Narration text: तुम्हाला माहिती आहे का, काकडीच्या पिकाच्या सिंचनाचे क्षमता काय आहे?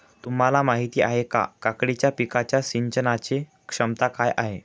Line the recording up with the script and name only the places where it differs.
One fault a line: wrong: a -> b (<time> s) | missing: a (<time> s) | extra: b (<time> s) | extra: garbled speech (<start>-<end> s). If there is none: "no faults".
no faults